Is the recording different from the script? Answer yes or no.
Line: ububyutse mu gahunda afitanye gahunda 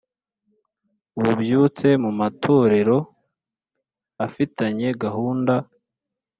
yes